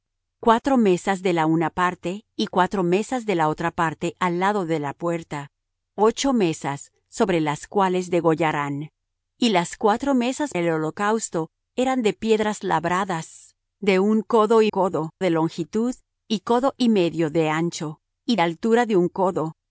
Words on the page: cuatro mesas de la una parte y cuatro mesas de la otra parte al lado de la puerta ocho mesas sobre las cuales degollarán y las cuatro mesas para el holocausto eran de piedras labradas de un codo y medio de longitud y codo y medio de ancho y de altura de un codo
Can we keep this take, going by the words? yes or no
no